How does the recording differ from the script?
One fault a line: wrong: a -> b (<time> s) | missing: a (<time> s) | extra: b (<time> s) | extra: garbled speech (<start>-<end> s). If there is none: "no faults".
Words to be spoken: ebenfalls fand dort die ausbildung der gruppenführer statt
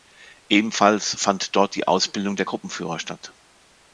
no faults